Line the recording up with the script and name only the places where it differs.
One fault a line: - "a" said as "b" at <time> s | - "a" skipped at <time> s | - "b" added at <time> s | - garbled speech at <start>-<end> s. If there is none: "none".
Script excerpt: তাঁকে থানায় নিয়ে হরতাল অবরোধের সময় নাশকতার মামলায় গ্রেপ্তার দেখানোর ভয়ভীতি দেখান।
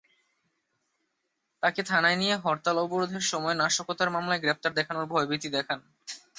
none